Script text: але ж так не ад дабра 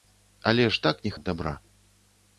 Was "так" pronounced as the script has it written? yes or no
yes